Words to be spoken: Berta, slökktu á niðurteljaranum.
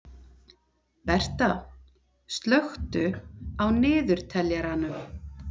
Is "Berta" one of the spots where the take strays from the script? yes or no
no